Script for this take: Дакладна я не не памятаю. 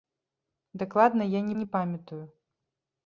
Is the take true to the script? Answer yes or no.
yes